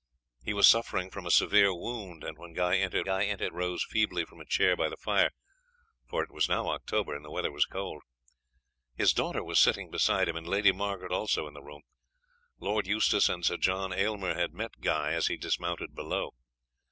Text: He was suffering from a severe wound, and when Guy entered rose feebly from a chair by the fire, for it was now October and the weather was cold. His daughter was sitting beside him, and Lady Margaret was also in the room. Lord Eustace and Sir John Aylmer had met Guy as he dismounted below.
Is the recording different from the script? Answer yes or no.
yes